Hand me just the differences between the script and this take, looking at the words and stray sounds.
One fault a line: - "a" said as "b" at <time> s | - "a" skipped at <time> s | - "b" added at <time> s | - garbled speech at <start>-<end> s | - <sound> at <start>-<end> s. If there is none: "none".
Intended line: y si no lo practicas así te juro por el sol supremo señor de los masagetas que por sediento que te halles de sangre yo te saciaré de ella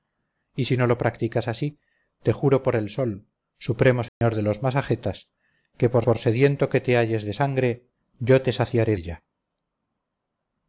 - dropout at 4.1-4.2 s
- "por" added at 6.0 s
- "de" skipped at 9.0 s